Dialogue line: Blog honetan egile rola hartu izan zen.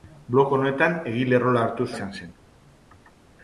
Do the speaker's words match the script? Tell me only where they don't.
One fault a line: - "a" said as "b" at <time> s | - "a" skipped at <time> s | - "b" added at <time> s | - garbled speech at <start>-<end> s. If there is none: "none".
none